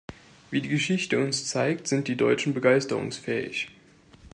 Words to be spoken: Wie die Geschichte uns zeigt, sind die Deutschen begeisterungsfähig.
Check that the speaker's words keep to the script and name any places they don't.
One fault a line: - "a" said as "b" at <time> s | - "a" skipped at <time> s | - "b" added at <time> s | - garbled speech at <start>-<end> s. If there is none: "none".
none